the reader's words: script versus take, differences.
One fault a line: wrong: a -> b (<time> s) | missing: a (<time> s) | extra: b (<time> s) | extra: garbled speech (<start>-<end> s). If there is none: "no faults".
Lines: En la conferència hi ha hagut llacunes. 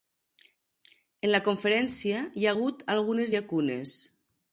extra: algunes (3.0 s)